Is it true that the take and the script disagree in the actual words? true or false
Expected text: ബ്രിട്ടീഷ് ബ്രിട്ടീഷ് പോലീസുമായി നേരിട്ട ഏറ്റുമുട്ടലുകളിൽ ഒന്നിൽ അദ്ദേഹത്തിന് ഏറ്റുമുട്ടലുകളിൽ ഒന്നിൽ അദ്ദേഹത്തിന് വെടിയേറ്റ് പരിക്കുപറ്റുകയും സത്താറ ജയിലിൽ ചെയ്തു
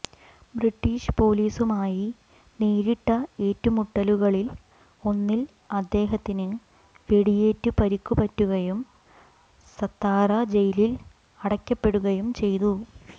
true